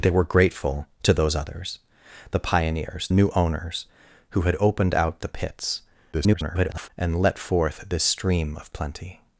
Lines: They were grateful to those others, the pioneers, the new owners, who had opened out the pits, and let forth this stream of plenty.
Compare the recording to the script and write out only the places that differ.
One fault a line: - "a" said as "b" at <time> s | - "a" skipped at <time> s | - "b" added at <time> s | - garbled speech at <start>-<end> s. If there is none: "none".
- "the" skipped at 3.1 s
- garbled speech at 6.1-6.9 s